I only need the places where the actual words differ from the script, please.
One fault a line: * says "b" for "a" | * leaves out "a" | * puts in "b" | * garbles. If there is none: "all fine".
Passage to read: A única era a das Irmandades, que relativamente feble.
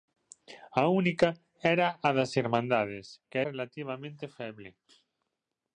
all fine